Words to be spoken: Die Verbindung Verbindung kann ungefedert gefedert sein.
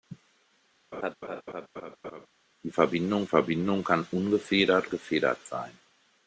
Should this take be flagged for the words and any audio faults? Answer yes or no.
yes